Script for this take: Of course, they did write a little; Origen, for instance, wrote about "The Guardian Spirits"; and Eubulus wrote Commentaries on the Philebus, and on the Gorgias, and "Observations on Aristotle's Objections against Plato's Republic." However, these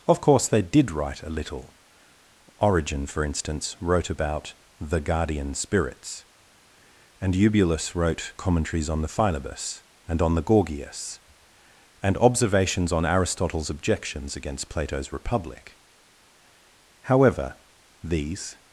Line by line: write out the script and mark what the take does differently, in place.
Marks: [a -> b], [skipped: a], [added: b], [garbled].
Of course, they did write a little; Origen, for instance, wrote about "The Guardian Spirits"; and Eubulus wrote Commentaries on the Philebus, and on the Gorgias, and "Observations on Aristotle's Objections against Plato's Republic." However, these